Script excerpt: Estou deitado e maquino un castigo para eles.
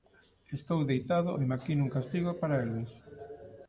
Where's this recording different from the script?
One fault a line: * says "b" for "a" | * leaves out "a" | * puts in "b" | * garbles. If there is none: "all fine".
all fine